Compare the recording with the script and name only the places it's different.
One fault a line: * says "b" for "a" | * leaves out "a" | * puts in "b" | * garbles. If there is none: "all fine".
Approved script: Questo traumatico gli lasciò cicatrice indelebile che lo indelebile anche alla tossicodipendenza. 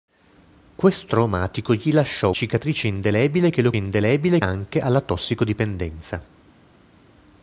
all fine